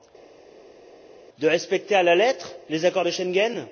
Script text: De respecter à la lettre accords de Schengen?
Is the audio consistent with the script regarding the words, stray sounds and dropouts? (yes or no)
no